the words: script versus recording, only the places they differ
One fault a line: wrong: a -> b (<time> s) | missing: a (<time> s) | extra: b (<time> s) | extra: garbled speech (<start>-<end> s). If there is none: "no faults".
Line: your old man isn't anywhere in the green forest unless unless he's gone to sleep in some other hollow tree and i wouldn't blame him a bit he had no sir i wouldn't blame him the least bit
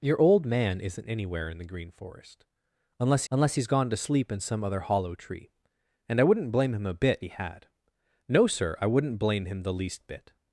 no faults